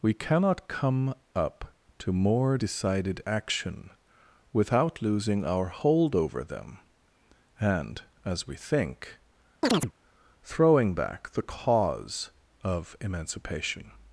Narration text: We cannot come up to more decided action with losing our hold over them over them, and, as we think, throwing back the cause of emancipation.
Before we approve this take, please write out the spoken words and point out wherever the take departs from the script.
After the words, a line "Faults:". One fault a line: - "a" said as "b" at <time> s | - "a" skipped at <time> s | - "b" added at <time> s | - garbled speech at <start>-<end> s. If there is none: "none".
We cannot come up to more decided action without losing our hold over them, and, as we think, throwing back the cause of emancipation.
Faults:
- "with" said as "without" at 4.5 s
- "over them" skipped at 6.8 s